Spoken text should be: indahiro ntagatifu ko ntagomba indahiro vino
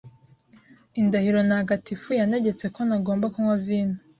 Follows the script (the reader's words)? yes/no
no